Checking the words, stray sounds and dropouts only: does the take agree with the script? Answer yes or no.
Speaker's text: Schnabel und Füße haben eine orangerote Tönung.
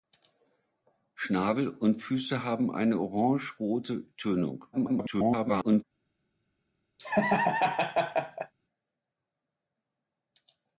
no